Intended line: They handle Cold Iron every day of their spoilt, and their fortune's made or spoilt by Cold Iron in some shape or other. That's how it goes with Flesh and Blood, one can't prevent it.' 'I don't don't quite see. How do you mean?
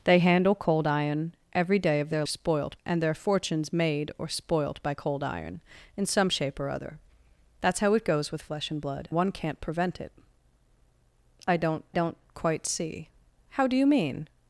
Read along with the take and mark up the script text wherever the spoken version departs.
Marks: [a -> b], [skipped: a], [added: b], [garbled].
They handle Cold Iron every day of their spoilt, and their fortune's made or spoilt by Cold Iron in some shape or other. That's how it goes with Flesh and Blood, one can't prevent it.' 'I don't don't quite see. How do you mean?